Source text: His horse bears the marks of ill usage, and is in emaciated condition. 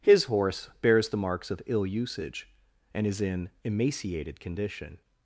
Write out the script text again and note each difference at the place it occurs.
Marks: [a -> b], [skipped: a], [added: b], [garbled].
His horse bears the marks of ill usage, and is in emaciated condition.